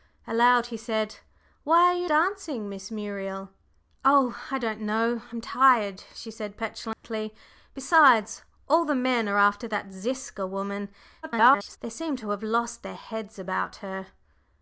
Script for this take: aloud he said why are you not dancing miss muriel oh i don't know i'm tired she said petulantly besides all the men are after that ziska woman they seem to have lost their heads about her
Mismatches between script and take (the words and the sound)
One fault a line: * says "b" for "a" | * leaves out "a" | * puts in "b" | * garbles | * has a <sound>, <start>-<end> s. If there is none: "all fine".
* leaves out "not"
* has a dropout, 6.9-7.0 s
* garbles